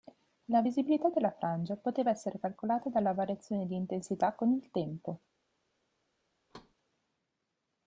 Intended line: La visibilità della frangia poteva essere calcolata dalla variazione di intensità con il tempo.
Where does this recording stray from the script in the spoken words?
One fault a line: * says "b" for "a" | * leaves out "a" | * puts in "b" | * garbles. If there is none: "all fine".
all fine